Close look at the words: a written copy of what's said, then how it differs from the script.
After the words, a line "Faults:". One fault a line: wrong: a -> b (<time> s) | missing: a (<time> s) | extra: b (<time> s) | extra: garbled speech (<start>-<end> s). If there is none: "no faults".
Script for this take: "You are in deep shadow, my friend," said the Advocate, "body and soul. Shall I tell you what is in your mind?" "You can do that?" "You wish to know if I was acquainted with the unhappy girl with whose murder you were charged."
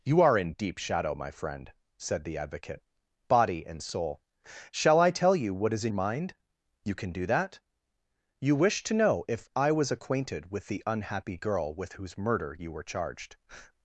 "You are in deep shadow, my friend," said the Advocate, "body and soul. Shall I tell you what is in mind?" "You can do that?" "You wish to know if I was acquainted with the unhappy girl with whose murder you were charged."
Faults:
missing: your (5.9 s)